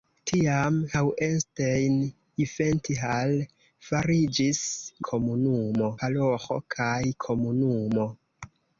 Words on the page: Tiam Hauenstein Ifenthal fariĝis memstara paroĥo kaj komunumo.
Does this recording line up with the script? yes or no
no